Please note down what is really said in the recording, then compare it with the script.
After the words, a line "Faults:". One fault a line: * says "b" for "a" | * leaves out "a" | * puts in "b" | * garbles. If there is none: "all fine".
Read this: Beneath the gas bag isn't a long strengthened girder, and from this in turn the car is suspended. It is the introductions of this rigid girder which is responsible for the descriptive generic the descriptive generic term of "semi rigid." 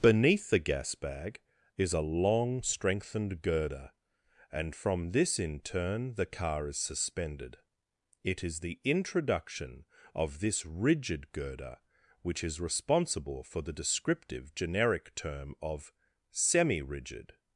Beneath the gas bag is a long strengthened girder, and from this in turn the car is suspended. It is the introduction of this rigid girder which is responsible for the descriptive generic term of "semi rigid."
Faults:
* says "is" for "isn't"
* says "introduction" for "introductions"
* leaves out "the descriptive generic"